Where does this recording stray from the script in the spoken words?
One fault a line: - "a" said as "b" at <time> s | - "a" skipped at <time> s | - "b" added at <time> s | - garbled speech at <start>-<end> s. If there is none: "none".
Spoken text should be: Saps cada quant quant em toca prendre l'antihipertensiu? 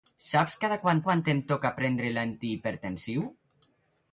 none